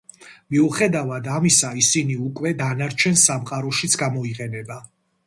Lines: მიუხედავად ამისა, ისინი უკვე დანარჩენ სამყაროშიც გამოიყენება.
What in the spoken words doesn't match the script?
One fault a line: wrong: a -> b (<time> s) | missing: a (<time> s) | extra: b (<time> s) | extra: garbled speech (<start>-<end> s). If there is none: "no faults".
no faults